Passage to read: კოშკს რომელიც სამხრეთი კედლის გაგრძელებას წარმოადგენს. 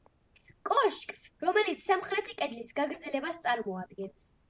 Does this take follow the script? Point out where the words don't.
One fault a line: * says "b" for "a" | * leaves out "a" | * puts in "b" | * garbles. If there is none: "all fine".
all fine